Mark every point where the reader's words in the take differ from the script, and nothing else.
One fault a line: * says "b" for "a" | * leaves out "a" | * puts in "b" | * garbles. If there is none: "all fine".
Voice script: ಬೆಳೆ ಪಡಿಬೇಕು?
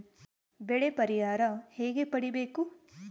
* puts in "ಪರಿಹಾರ ಹೇಗೆ"